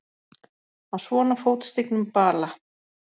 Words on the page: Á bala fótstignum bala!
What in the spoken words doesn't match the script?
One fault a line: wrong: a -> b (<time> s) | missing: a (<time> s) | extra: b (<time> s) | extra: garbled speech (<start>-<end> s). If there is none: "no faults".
wrong: bala -> svona (1.0 s)